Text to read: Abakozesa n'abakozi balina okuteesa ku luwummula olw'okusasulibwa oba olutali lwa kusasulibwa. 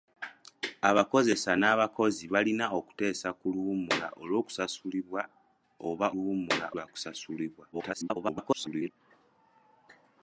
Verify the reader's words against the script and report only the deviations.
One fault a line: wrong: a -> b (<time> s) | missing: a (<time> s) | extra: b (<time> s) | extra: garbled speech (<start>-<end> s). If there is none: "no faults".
wrong: olutali -> luwummula (6.1 s)
extra: garbled speech (7.7-8.9 s)